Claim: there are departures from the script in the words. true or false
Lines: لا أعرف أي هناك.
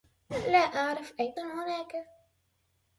false